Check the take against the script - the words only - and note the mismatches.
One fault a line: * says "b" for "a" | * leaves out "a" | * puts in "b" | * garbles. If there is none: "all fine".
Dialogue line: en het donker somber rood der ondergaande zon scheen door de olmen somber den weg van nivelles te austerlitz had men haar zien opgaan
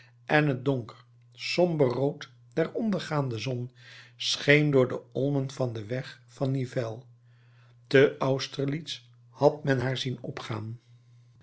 * says "van" for "somber"